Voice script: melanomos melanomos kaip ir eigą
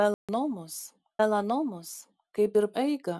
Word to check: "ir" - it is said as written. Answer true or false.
true